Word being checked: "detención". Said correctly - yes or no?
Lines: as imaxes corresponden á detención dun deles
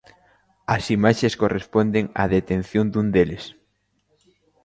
yes